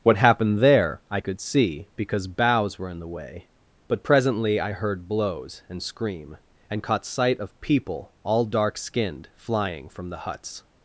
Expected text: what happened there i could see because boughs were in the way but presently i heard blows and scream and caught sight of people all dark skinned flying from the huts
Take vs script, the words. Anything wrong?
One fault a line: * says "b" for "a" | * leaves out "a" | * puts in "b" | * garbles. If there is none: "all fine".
all fine